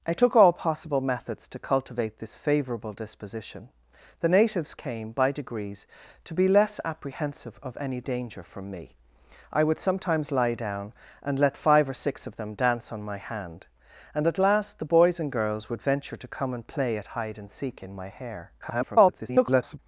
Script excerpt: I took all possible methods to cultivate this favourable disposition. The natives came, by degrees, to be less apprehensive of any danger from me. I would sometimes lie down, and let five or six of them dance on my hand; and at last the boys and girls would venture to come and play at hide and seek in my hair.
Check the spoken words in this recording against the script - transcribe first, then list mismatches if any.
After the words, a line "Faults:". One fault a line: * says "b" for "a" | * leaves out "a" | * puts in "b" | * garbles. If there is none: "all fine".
I took all possible methods to cultivate this favourable disposition. The natives came, by degrees, to be less apprehensive of any danger from me. I would sometimes lie down, and let five or six of them dance on my hand; and at last the boys and girls would venture to come and play at hide and seek in my hair. [garbled]
Faults:
* garbles